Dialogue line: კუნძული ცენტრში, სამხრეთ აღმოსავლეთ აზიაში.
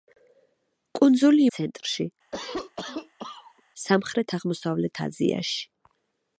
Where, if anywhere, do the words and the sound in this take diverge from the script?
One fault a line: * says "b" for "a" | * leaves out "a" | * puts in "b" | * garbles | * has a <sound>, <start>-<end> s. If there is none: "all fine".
* has a cough, 2.3-3.6 s